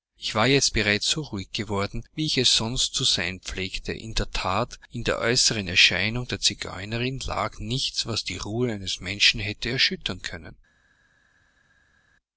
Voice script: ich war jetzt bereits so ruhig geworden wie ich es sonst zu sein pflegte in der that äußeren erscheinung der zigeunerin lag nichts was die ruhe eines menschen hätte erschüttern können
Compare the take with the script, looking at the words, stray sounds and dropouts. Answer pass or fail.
fail